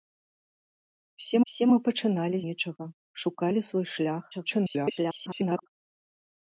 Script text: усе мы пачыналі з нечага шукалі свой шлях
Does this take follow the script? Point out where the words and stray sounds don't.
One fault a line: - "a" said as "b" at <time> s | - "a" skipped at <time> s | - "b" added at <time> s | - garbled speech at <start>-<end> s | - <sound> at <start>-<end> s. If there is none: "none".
- "усе" added at 1.5 s
- "з" skipped at 2.4 s
- garbled speech at 4.3-5.7 s